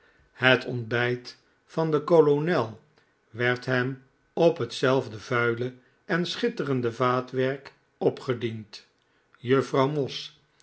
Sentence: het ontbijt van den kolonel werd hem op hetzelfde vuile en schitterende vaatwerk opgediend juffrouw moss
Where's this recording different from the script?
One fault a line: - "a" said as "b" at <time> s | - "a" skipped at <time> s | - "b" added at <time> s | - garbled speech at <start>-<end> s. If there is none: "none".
none